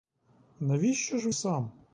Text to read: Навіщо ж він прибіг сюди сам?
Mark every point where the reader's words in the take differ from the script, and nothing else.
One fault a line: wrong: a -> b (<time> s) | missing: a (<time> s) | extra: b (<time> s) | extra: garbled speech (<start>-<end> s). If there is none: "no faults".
missing: він прибіг сюди (1.3 s)